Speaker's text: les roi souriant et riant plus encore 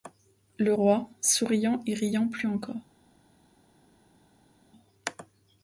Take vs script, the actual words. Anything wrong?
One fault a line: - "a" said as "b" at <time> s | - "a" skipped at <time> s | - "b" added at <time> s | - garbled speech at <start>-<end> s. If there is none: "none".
- "les" said as "le" at 0.6 s